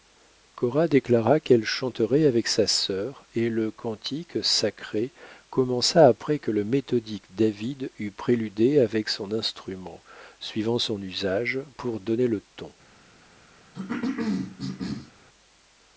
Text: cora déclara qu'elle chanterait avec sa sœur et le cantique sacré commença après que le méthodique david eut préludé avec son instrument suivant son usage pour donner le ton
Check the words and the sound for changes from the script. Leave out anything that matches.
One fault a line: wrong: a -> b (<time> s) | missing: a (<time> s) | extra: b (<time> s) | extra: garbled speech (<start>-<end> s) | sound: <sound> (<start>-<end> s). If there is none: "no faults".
sound: cough (13.7-15.1 s)